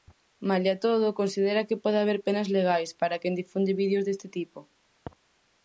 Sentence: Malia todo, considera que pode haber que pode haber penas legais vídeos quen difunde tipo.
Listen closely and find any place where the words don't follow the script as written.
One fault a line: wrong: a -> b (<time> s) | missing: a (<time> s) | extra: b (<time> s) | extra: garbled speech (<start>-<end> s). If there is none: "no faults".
missing: que pode haber (2.2 s)
wrong: vídeos -> para (3.0 s)
extra: vídeos deste (3.8 s)